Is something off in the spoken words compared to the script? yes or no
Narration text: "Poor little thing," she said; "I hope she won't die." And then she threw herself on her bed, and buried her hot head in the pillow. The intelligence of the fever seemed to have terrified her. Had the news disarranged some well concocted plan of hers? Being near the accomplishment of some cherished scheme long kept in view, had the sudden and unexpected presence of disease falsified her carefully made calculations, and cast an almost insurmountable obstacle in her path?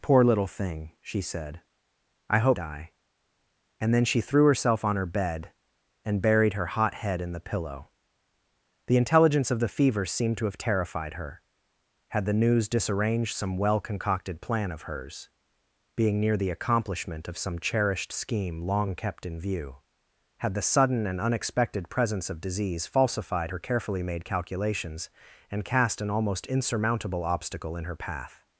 yes